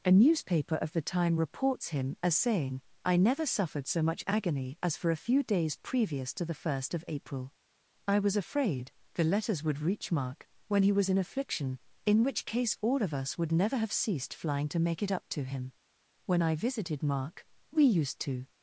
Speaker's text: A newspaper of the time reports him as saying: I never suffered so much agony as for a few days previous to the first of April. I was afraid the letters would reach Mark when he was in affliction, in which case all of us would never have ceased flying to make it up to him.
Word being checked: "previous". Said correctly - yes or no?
yes